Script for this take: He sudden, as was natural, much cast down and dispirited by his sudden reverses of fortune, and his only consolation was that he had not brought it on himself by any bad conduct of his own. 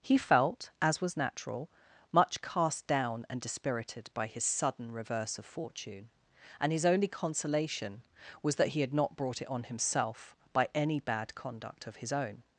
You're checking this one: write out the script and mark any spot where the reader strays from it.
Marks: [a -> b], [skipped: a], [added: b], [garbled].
He [sudden, -> felt] as was natural, much cast down and dispirited by his sudden [reverses -> reverse] of fortune, and his only consolation was that he had not brought it on himself by any bad conduct of his own.